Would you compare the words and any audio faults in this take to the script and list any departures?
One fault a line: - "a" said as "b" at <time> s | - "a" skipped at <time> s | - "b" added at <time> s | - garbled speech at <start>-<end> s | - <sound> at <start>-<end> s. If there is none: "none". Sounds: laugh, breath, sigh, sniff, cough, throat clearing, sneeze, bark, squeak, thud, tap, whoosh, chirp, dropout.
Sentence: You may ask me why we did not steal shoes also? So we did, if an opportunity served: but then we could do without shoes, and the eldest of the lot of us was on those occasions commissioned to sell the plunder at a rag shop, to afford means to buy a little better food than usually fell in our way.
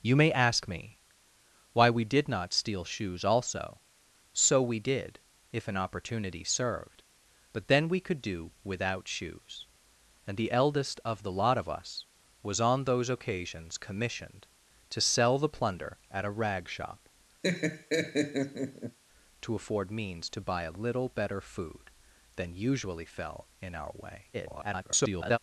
- laugh at 17.4-19.0 s
- garbled speech at 24.3-25.4 s